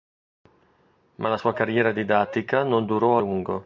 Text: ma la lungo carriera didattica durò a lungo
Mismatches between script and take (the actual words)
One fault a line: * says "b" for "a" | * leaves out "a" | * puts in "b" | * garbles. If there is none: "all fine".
* says "sua" for "lungo"
* puts in "non"